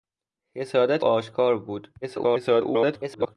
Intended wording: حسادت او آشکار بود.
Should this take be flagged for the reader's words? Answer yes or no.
yes